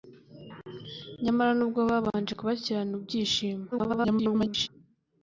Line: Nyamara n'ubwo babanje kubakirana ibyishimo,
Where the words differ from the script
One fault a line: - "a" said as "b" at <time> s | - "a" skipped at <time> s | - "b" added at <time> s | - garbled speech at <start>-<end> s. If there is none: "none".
- garbled speech at 3.7-4.7 s